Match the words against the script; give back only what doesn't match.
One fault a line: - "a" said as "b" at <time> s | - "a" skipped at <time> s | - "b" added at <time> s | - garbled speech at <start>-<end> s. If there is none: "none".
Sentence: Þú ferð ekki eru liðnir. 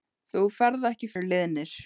none